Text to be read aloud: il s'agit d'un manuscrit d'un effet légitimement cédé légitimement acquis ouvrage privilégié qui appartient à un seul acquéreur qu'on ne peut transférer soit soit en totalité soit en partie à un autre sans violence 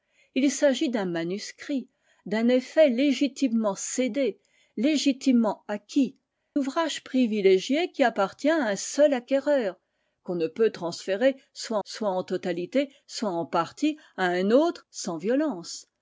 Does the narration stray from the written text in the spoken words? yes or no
no